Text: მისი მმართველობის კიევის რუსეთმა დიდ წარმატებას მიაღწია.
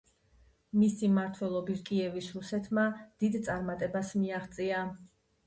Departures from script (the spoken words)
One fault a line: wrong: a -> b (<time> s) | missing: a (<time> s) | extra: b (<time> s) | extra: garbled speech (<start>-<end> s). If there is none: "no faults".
no faults